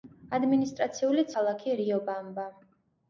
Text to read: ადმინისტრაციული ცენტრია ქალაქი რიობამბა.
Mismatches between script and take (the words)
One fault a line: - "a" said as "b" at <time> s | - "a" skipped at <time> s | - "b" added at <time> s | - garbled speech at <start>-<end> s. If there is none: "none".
- "ცენტრია" skipped at 1.3 s